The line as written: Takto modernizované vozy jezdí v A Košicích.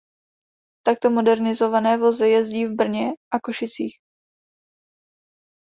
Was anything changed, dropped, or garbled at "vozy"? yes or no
no